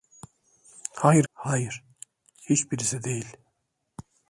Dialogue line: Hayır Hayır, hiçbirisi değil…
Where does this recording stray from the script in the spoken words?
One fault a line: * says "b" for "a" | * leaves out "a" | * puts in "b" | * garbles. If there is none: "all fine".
all fine